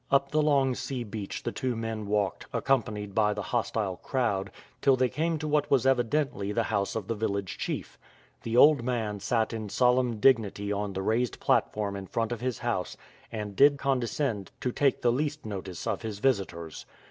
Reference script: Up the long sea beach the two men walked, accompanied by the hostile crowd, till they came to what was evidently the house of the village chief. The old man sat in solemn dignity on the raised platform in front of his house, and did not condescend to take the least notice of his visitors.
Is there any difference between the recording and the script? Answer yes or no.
yes